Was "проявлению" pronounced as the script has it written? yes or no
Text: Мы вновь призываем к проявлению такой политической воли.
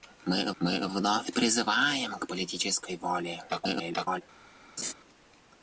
no